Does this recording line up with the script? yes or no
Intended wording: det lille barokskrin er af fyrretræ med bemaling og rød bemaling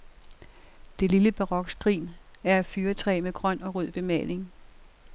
no